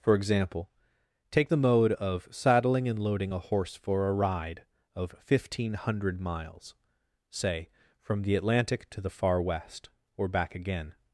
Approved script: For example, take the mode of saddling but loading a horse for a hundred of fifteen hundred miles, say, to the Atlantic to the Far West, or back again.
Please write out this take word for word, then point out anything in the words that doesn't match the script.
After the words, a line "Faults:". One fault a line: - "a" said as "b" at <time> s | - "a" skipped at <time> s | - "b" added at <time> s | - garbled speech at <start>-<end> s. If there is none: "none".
For example, take the mode of saddling and loading a horse for a ride of fifteen hundred miles, say, from the Atlantic to the Far West, or back again.
Faults:
- "but" said as "and" at 2.9 s
- "hundred" said as "ride" at 4.1 s
- "to" said as "from" at 8.0 s